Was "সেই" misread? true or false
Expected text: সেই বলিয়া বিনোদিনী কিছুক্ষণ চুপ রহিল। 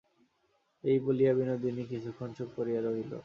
true